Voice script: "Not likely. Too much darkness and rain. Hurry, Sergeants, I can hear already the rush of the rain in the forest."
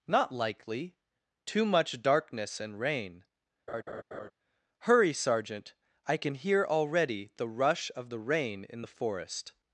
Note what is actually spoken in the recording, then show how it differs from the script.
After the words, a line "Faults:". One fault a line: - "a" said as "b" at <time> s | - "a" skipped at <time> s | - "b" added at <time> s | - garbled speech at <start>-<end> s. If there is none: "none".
"Not likely. Too much darkness and rain. Hurry, Sergeant, I can hear already the rush of the rain in the forest."
Faults:
- "Sergeants" said as "Sergeant" at 5.1 s